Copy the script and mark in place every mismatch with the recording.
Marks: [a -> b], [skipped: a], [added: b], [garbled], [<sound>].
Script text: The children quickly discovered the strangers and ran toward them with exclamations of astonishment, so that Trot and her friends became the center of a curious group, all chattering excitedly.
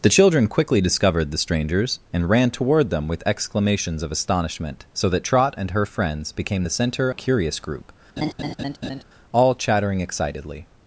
The children quickly discovered the strangers and ran toward them with exclamations of astonishment, so that Trot and her friends became the center [skipped: of] a curious group, [laugh] all chattering excitedly.